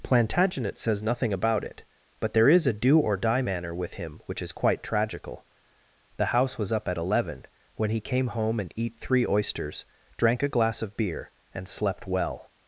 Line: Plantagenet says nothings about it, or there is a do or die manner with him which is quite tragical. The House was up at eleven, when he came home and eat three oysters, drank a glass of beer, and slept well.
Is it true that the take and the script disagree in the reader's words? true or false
true